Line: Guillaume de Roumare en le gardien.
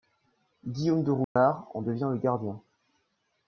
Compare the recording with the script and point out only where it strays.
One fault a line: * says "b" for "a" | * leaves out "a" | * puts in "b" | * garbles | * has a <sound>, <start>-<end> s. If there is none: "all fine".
* has a dropout, 1.2-1.4 s
* puts in "devient"